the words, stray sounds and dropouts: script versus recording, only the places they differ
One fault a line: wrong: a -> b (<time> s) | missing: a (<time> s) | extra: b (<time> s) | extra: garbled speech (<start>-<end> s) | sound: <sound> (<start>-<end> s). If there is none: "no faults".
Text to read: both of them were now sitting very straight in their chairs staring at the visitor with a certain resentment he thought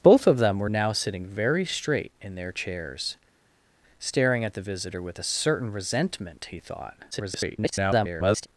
extra: garbled speech (7.1-8.5 s)